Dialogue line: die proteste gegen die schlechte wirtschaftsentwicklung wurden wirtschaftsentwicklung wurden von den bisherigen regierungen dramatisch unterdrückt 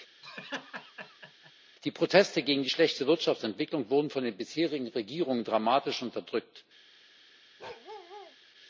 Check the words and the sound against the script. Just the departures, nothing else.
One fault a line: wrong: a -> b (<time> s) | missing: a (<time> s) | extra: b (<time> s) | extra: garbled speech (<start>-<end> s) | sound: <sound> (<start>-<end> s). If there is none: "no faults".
sound: laugh (0.2-1.5 s)
missing: wirtschaftsentwicklung wurden (4.1 s)
sound: bark (7.6-8.4 s)